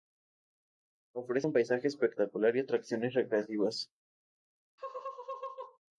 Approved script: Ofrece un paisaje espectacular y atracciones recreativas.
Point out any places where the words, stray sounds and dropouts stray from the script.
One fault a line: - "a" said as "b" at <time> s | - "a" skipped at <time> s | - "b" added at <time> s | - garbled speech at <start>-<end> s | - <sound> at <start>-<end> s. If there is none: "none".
- laugh at 4.8-5.8 s